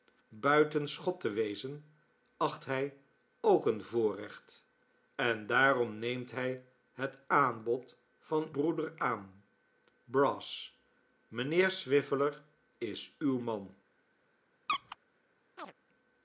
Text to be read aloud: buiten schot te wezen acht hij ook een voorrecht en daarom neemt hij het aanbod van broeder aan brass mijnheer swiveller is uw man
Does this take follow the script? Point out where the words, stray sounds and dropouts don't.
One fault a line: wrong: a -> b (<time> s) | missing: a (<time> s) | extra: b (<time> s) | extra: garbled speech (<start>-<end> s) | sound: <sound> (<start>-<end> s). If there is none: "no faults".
sound: squeak (14.7-15.0 s)
sound: chirp (15.6-15.7 s)